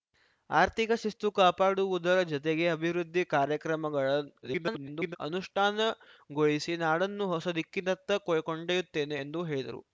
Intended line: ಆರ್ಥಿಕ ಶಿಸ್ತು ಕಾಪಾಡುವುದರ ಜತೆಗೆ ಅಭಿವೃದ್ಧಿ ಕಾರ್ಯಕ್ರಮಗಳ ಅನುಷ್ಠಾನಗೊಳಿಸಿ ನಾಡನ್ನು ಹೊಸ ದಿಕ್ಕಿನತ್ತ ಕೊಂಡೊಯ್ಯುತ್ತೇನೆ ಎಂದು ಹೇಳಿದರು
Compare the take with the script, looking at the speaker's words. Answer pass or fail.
fail